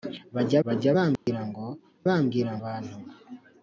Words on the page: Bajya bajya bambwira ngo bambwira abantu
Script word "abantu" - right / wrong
right